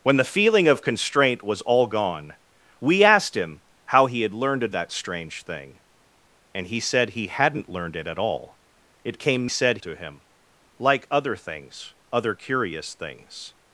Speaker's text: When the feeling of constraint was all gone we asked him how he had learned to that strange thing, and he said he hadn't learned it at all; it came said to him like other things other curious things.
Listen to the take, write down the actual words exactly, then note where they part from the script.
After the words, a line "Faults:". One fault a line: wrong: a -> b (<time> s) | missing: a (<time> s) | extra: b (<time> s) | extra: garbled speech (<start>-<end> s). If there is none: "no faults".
When the feeling of constraint was all gone we asked him how he had learned to that strange thing, and he said he hadn't learned it at all; it came said to him like other things other curious things.
Faults:
no faults